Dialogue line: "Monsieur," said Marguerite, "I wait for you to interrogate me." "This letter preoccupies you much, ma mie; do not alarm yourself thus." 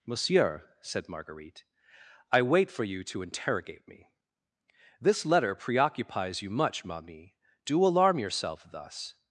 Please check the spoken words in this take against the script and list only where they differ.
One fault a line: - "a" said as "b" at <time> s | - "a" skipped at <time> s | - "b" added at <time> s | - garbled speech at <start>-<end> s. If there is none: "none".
- "not" skipped at 7.8 s